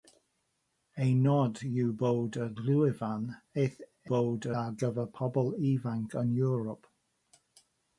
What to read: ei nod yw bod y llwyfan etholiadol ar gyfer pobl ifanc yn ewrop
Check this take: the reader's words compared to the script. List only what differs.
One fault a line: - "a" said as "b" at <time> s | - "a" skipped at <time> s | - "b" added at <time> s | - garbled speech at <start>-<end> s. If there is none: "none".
- "etholiadol" said as "bod" at 4.1 s